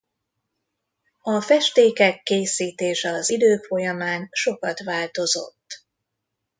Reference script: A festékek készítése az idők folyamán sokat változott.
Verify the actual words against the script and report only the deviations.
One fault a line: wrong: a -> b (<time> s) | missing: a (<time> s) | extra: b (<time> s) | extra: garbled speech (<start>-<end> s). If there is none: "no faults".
no faults